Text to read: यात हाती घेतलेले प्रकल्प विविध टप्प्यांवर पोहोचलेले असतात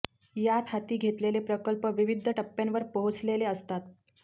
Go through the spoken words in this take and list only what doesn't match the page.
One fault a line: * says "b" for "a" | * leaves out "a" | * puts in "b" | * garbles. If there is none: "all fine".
all fine